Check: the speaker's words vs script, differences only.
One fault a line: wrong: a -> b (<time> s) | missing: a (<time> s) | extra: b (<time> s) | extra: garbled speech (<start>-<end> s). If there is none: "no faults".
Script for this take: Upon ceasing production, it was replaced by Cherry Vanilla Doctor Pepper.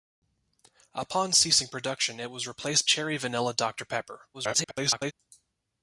missing: by (2.9 s)
extra: garbled speech (4.3-5.1 s)